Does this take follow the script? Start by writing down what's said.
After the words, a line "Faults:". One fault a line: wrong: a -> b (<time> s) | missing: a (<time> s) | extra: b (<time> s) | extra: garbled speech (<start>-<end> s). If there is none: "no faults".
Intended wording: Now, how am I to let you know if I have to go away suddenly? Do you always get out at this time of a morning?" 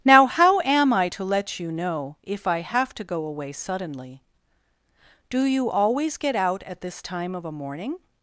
Now, how am I to let you know if I have to go away suddenly? Do you always get out at this time of a morning?"
Faults:
no faults